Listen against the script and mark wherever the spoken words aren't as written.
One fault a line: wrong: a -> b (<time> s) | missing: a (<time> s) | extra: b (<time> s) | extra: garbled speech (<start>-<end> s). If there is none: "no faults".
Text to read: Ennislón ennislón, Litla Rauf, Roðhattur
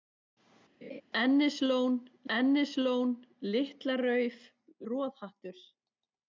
no faults